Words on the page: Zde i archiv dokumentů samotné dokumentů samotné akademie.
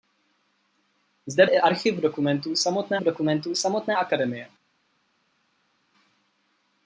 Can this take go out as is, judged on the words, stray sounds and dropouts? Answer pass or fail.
pass